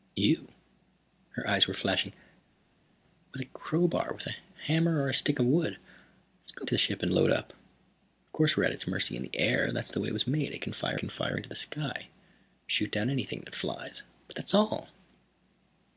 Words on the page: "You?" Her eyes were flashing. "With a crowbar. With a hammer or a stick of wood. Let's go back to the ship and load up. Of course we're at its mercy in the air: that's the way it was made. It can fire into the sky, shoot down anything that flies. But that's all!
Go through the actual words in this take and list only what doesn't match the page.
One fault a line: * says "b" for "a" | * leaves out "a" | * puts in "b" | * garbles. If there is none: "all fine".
* leaves out "back"
* puts in "can fire"